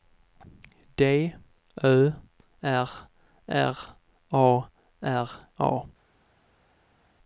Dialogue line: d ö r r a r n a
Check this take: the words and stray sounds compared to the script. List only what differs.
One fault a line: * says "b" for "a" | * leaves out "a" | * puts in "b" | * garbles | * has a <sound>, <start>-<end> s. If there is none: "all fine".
* leaves out "n"